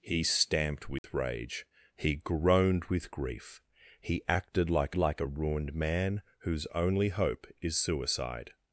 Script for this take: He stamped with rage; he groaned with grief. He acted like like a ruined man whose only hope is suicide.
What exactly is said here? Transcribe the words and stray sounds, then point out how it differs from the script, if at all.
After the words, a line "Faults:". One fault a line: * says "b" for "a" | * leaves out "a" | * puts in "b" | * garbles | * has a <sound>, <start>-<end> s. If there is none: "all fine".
He stamped with rage; he groaned with grief. He acted like like a ruined man whose only hope is suicide.
Faults:
* has a dropout, 1.0-1.0 s